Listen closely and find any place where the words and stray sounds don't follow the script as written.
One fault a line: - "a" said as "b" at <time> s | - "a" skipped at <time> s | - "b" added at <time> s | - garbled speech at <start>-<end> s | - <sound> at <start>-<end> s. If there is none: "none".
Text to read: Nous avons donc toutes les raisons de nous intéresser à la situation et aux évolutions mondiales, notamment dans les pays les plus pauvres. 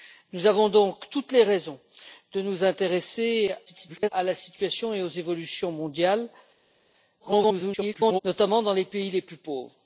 - garbled speech at 3.7-4.1 s
- garbled speech at 7.2-8.2 s